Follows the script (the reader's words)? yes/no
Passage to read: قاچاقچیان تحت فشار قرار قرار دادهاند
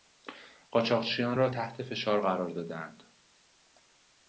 no